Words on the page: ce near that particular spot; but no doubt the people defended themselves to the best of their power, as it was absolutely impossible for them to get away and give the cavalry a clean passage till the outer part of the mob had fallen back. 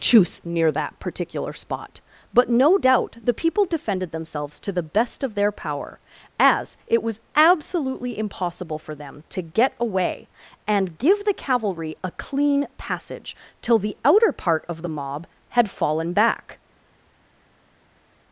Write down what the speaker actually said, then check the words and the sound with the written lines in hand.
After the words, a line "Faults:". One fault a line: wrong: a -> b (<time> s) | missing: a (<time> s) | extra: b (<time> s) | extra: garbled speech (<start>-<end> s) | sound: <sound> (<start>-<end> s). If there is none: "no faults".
choose near that particular spot; but no doubt the people defended themselves to the best of their power, as it was absolutely impossible for them to get away and give the cavalry a clean passage till the outer part of the mob had fallen back.
Faults:
wrong: ce -> choose (0.0 s)